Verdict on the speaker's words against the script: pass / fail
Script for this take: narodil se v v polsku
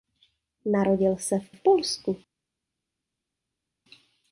pass